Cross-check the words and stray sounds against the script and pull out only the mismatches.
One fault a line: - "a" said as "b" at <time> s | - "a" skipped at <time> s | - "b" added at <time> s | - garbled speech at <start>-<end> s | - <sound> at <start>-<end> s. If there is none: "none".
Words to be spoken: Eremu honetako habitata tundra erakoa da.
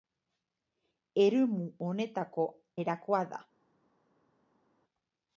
- "habitata tundra" skipped at 2.5 s